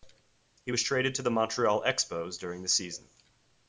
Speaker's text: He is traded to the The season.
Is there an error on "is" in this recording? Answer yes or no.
yes